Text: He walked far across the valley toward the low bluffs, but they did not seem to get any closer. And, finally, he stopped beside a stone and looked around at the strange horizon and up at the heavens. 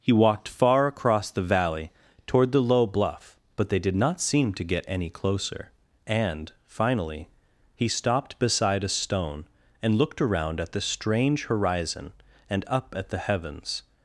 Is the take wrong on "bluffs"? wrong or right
wrong